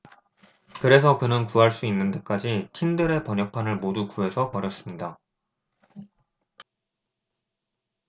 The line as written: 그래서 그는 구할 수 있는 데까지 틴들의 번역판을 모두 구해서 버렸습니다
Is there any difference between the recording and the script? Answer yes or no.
no